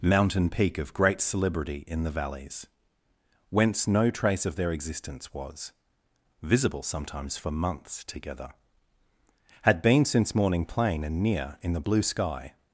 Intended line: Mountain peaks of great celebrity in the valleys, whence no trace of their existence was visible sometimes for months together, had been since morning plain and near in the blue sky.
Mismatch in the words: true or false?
true